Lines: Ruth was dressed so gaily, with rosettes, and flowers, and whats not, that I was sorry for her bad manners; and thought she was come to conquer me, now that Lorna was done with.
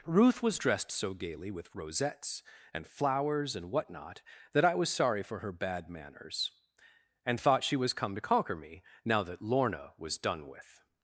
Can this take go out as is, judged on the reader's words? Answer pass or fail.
fail